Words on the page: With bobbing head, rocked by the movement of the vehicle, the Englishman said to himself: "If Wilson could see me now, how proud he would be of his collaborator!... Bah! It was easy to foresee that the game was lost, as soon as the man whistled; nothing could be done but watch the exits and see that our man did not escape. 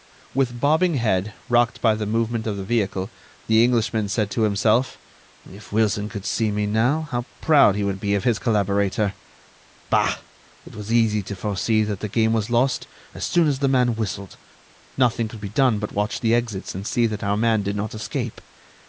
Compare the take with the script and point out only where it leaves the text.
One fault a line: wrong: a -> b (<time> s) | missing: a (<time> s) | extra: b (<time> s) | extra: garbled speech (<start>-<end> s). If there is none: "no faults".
no faults